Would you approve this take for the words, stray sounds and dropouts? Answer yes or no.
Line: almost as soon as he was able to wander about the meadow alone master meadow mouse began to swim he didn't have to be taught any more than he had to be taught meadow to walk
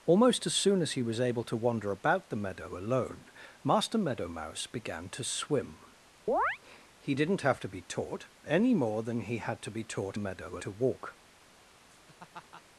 no